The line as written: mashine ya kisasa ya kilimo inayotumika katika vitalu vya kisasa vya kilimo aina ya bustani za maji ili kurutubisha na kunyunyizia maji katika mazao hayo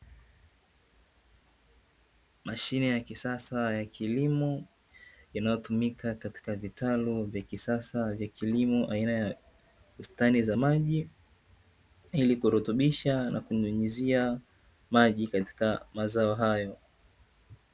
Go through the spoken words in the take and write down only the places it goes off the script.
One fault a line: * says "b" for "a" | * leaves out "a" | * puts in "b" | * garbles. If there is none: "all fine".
all fine